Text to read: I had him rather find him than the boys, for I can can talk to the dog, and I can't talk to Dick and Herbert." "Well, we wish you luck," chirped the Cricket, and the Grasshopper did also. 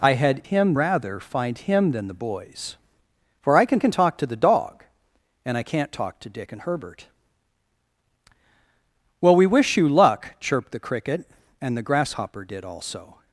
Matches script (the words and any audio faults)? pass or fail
pass